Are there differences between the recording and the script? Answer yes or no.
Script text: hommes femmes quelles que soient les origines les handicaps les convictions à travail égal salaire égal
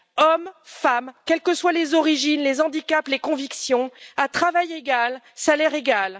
no